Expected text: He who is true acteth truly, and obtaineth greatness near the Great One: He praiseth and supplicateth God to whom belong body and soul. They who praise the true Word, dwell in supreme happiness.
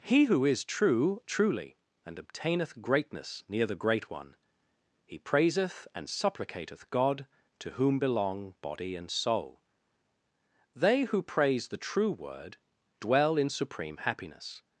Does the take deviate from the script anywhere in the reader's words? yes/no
yes